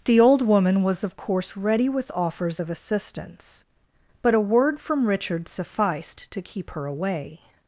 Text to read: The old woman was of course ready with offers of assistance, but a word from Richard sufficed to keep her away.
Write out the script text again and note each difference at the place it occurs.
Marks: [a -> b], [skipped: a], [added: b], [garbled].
The old woman was of course ready with offers of assistance, but a word from Richard sufficed to keep her away.